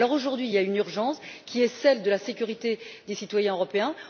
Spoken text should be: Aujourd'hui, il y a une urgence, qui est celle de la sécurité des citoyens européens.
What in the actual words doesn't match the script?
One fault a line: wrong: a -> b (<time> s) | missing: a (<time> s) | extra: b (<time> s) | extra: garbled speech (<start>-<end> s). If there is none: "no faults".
no faults